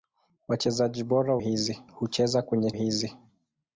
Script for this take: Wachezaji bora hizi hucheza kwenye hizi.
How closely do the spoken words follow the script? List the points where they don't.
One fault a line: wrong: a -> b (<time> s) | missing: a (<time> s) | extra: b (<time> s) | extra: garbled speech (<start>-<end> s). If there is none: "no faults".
no faults